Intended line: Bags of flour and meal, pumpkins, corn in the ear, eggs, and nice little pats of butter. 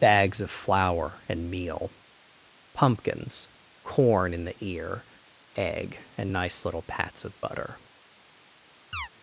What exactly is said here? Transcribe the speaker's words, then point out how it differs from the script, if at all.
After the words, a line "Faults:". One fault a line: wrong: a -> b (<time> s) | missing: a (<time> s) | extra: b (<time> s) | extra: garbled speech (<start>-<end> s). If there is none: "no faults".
Bags of flour and meal, pumpkins, corn in the ear, egg, and nice little pats of butter.
Faults:
wrong: eggs -> egg (5.5 s)